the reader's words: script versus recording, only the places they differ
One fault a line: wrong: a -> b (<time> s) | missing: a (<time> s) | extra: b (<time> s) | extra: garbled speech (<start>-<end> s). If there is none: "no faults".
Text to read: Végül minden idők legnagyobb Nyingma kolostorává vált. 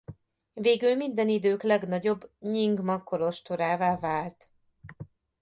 no faults